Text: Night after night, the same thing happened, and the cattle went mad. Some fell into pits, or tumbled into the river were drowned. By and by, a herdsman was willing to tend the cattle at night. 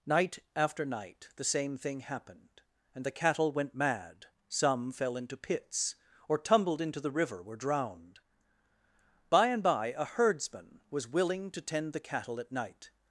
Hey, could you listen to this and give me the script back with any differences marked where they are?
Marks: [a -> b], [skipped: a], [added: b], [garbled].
Night after night, the same thing happened, and the cattle went mad. Some fell into pits, or tumbled into the river were drowned. By and by, a herdsman was willing to tend the cattle at night.